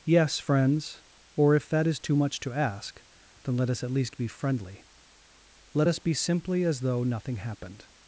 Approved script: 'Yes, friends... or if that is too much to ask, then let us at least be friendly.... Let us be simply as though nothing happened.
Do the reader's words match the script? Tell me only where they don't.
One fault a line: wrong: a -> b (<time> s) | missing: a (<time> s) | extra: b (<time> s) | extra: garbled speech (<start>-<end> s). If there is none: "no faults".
no faults